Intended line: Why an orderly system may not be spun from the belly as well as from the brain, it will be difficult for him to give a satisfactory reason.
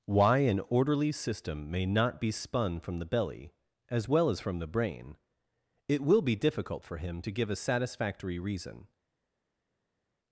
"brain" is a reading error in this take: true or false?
false